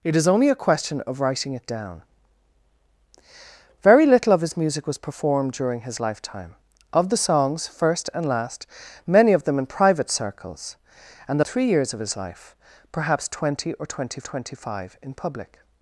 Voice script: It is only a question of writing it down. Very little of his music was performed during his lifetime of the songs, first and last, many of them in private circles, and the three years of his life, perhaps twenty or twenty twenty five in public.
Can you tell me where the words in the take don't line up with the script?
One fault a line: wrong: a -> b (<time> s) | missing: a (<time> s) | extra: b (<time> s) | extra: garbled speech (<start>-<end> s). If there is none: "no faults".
no faults